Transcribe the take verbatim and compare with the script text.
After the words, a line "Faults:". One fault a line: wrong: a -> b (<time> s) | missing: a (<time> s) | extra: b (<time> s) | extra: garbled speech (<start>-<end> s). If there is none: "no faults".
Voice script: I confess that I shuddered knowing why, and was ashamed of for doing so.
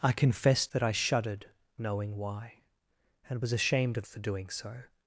I confess that I shuddered knowing why, and was ashamed of for doing so.
Faults:
no faults